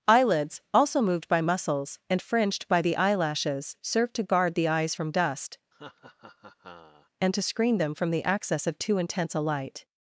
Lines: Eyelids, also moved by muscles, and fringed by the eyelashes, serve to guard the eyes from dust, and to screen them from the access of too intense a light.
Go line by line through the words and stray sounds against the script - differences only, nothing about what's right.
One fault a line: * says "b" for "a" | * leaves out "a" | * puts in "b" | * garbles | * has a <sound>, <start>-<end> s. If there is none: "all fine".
* has a laugh, 5.7-7.1 s